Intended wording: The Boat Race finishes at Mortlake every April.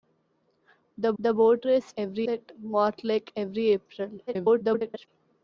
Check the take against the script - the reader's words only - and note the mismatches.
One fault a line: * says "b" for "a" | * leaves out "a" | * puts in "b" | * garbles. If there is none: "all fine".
* puts in "the"
* says "every" for "finishes"
* garbles